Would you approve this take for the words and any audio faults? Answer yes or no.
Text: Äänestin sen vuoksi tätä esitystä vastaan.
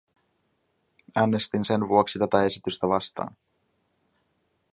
yes